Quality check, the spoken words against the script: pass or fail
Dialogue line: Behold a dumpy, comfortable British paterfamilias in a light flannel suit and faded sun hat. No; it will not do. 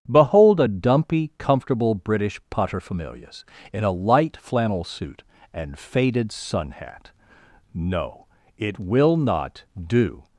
pass